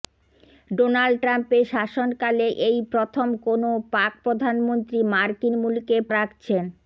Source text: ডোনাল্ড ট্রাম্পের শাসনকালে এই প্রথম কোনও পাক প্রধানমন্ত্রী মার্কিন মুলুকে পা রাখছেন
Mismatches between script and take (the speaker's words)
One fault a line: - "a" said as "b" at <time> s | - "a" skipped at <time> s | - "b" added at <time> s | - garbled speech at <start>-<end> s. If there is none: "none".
- "পা" skipped at 6.0 s